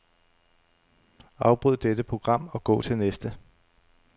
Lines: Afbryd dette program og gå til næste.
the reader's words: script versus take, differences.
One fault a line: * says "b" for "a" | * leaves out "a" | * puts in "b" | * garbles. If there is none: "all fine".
all fine